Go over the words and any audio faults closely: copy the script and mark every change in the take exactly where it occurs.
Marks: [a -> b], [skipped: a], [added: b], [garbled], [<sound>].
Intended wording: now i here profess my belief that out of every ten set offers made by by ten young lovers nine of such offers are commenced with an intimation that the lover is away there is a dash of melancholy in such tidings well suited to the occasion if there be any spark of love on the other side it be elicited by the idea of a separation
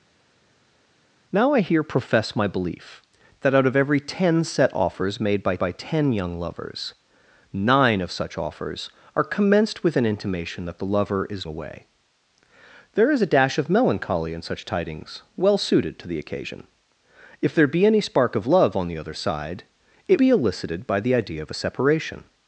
now i here profess my belief that out of every ten set offers made by by ten young lovers nine of such offers are commenced with an intimation that the lover is away there is a dash of melancholy in such tidings well suited to the occasion if there be any spark of love on the other side it be elicited by the idea of a separation